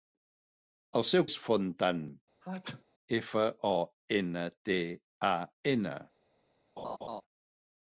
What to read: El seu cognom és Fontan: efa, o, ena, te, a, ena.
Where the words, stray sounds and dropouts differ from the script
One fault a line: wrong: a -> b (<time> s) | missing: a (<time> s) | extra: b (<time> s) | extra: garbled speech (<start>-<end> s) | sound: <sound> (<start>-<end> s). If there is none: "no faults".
missing: cognom (1.2 s)
sound: sneeze (2.4-2.8 s)
sound: laugh (6.8-7.2 s)